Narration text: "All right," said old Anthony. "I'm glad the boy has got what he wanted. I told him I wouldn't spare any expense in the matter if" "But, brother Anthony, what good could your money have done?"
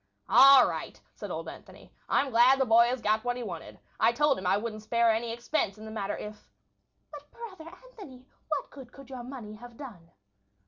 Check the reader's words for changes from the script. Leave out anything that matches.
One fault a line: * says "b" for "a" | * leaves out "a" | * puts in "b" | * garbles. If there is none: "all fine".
all fine